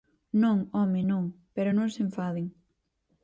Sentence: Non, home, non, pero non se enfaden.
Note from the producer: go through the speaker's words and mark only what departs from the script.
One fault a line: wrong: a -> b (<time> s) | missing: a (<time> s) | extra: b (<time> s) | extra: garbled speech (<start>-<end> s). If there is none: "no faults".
no faults